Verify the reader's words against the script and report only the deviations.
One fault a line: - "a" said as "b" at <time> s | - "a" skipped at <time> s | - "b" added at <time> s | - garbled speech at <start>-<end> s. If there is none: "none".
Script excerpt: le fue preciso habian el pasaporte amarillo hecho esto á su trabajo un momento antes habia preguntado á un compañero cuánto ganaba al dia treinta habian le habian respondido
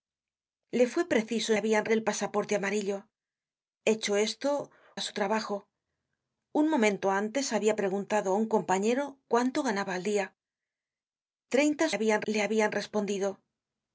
none